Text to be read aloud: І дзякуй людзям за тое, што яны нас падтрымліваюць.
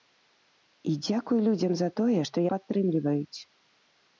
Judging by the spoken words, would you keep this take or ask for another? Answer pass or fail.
fail